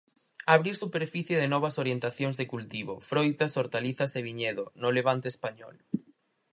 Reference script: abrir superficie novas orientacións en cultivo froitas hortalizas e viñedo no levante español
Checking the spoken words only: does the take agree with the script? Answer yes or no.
no